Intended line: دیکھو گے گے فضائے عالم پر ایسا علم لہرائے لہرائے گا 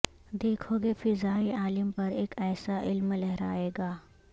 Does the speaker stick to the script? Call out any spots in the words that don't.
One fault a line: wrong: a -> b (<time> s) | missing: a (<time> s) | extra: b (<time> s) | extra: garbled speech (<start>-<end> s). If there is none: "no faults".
missing: گے (0.9 s)
extra: اک (2.2 s)
missing: لہرائے (3.7 s)